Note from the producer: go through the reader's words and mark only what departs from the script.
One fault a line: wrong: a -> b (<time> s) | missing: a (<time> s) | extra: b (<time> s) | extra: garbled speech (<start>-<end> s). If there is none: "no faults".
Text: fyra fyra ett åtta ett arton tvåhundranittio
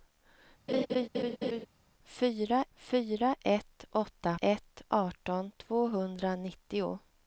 no faults